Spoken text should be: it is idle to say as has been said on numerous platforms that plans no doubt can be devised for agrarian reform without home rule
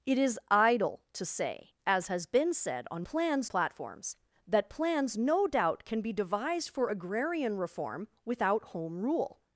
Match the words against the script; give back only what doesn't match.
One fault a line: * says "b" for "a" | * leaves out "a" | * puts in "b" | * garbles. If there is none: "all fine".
* says "plans" for "numerous"